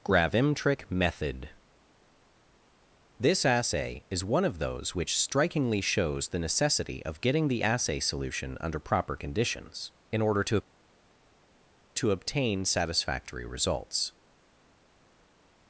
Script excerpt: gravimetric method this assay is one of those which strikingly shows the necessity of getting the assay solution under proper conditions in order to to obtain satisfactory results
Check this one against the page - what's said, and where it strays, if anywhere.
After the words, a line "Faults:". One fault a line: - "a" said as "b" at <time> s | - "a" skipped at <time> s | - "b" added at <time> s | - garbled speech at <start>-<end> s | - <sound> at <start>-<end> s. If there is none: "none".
gravimetric method this assay is one of those which strikingly shows the necessity of getting the assay solution under proper conditions in order to to obtain satisfactory results
Faults:
none